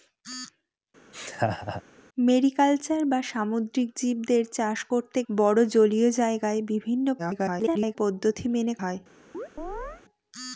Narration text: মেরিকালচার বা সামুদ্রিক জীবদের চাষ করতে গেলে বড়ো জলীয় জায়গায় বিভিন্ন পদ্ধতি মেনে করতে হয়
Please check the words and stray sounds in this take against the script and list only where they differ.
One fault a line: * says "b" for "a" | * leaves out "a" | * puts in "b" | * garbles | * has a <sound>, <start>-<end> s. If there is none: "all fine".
* has a laugh, 1.1-1.8 s
* leaves out "গেলে"
* garbles
* leaves out "করতে"
* has a chirp, 9.3-10.0 s